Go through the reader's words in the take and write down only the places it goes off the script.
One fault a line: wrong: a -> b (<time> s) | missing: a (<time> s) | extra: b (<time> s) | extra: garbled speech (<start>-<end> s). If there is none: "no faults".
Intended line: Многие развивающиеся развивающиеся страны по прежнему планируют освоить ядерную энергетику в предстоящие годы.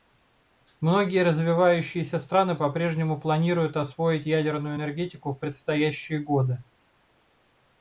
missing: развивающиеся (2.2 s)